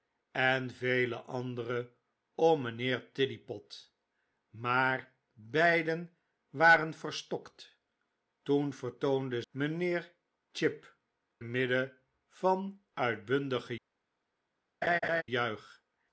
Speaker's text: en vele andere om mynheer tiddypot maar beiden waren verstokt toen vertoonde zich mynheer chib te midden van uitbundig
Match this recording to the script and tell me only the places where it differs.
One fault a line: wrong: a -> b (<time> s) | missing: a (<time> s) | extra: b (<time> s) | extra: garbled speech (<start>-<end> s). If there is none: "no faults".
missing: zich (9.4 s)
missing: te (11.0 s)